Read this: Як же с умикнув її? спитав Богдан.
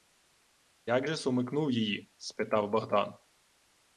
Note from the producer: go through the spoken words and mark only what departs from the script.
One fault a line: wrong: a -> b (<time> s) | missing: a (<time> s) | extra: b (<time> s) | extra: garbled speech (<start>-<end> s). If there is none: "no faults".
no faults